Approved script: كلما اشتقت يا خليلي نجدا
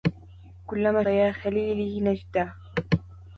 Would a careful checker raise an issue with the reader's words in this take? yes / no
yes